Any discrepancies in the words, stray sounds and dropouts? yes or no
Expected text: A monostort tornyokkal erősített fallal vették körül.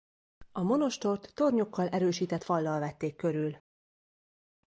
no